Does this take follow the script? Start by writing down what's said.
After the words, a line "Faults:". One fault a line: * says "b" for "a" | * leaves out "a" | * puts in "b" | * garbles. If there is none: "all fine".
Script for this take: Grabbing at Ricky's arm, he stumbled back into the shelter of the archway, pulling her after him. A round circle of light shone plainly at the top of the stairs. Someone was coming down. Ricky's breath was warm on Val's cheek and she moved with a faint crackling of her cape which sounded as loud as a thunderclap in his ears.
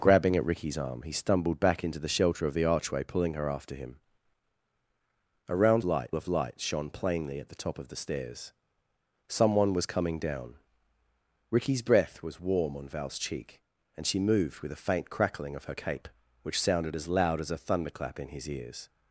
Grabbing at Ricky's arm, he stumbled back into the shelter of the archway, pulling her after him. A round light of light shone plainly at the top of the stairs. Someone was coming down. Ricky's breath was warm on Val's cheek and she moved with a faint crackling of her cape which sounded as loud as a thunderclap in his ears.
Faults:
* says "light" for "circle"